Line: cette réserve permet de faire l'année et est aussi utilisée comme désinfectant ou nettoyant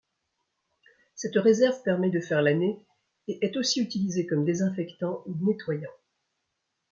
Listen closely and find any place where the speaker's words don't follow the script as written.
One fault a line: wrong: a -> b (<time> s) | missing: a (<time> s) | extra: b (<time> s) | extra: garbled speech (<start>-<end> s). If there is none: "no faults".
no faults